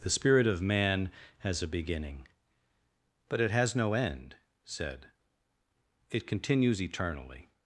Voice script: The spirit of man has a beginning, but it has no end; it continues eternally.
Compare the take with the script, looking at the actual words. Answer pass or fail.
fail